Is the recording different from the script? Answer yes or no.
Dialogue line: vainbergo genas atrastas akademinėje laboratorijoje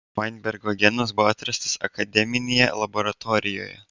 yes